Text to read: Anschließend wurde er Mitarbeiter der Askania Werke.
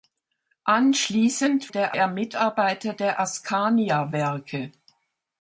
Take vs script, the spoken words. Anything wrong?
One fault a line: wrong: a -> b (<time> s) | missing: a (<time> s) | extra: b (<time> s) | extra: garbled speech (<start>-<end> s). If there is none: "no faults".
wrong: wurde -> der (1.7 s)